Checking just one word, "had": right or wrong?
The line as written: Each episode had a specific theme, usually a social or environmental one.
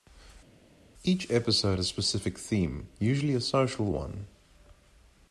wrong